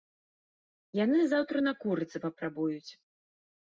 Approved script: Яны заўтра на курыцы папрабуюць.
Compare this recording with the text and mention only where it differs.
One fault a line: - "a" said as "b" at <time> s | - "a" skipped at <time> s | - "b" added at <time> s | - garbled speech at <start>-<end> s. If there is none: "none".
none